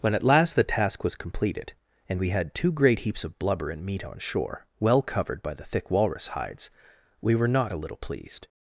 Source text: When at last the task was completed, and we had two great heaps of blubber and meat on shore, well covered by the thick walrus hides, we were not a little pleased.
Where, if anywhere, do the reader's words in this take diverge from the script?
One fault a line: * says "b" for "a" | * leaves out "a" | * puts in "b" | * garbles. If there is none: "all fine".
all fine